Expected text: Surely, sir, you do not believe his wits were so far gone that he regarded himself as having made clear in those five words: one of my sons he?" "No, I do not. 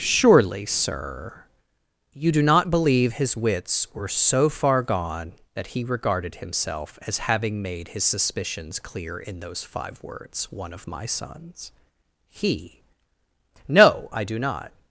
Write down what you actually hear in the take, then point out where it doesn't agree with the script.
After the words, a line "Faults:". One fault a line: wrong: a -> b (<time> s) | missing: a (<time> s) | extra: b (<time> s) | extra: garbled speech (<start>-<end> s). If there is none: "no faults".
Surely, sir, you do not believe his wits were so far gone that he regarded himself as having made his suspicions clear in those five words: one of my sons he?" "No, I do not.
Faults:
extra: his suspicions (7.9 s)